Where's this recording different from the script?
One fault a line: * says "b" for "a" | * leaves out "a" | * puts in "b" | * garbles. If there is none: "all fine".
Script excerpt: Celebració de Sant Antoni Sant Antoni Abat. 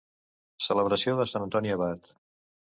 * leaves out "Sant Antoni"